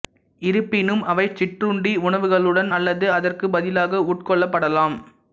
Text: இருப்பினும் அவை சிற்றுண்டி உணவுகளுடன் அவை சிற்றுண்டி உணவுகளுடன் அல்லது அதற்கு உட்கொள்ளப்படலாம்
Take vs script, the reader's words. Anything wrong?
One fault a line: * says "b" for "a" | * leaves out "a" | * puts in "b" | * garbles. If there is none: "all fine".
* leaves out "அவை சிற்றுண்டி உணவுகளுடன்"
* puts in "பதிலாக"